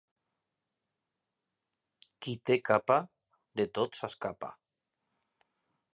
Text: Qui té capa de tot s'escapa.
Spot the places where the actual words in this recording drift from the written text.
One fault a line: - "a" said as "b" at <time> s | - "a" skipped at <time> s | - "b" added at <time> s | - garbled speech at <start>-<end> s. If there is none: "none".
none